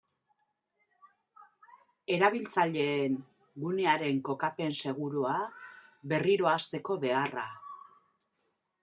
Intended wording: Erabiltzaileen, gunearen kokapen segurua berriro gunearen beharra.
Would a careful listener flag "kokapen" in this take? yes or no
no